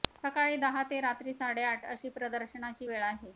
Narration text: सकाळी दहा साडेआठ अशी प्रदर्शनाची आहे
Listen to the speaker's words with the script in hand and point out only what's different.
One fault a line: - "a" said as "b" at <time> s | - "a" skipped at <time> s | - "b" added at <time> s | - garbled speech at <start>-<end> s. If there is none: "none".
- "ते रात्री" added at 0.8 s
- "वेळ" added at 2.8 s